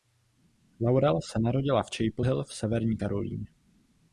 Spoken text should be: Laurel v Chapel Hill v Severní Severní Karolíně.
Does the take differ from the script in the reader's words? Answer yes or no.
yes